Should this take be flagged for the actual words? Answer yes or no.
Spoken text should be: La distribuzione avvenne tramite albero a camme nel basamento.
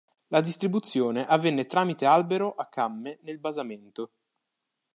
no